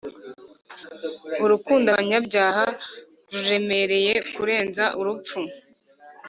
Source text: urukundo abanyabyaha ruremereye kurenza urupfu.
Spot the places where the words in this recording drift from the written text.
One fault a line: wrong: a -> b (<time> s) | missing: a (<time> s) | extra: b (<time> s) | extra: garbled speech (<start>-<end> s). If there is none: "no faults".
no faults